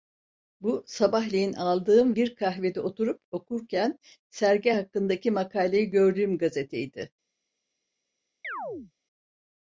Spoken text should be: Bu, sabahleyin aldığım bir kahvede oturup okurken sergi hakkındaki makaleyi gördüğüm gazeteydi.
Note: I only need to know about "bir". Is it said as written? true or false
true